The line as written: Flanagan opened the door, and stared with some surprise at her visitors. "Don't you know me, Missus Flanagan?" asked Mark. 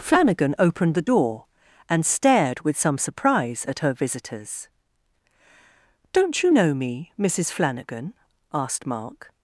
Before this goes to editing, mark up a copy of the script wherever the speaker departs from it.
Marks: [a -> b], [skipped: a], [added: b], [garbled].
Flanagan opened the door, and stared with some surprise at her visitors. "Don't you know me, Missus Flanagan?" asked Mark.